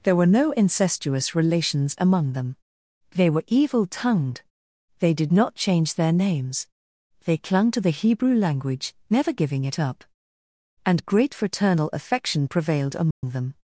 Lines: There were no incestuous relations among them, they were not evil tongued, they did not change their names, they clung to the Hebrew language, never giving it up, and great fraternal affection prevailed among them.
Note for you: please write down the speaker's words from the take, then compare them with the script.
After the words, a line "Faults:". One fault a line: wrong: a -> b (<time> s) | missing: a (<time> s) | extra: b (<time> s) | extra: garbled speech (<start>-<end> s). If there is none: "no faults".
There were no incestuous relations among them, they were evil tongued, they did not change their names, they clung to the Hebrew language, never giving it up, and great fraternal affection prevailed among them.
Faults:
missing: not (3.4 s)